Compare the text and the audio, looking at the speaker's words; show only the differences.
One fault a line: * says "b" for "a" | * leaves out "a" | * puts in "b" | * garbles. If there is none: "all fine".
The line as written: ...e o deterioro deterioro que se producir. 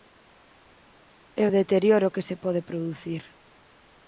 * leaves out "deterioro"
* puts in "pode"